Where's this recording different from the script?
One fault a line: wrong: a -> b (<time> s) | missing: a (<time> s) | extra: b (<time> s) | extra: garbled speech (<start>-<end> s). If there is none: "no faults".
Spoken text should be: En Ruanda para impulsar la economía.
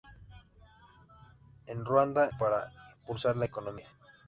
no faults